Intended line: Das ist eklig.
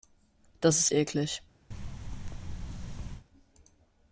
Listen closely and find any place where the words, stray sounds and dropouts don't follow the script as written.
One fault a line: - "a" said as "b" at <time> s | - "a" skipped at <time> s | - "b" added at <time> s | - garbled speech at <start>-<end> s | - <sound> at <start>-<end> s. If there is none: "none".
- thud at 1.7-3.3 s